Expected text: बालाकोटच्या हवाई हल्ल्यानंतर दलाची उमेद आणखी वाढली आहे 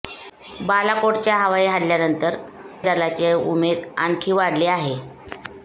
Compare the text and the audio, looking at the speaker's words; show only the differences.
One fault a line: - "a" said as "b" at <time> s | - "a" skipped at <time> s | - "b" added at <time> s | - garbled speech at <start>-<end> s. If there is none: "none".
none